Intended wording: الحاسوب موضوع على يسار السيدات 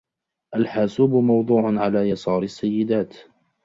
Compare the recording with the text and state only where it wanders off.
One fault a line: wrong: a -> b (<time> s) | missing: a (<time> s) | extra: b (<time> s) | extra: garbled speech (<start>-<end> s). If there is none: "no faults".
no faults